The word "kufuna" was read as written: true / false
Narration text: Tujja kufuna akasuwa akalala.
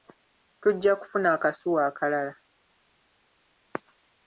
true